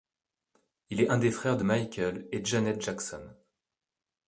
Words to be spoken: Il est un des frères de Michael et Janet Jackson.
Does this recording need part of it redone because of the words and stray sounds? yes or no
no